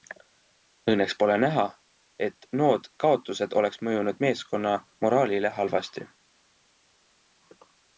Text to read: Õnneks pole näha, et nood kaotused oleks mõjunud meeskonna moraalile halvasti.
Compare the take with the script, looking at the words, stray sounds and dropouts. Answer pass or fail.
pass